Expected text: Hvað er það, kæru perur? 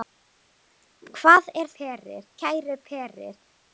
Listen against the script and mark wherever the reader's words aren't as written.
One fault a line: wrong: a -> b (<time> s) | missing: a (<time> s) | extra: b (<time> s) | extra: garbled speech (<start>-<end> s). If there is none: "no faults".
wrong: það -> perur (1.8 s)